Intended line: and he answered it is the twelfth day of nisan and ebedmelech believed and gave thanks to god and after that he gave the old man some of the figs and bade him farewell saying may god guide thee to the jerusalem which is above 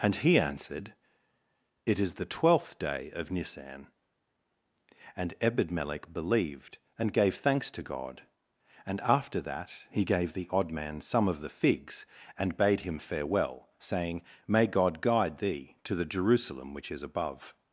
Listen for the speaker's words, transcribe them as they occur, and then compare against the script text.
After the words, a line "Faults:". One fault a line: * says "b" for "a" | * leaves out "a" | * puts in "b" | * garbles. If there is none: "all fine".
and he answered it is the twelfth day of nisan and ebedmelech believed and gave thanks to god and after that he gave the odd man some of the figs and bade him farewell saying may god guide thee to the jerusalem which is above
Faults:
* says "odd" for "old"